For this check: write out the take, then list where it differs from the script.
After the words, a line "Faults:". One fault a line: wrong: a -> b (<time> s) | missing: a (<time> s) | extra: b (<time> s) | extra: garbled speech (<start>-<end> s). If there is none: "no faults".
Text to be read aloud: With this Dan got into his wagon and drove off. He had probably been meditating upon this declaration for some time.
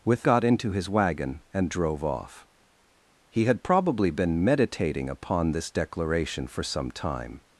With got into his wagon and drove off. He had probably been meditating upon this declaration for some time.
Faults:
missing: this Dan (0.2 s)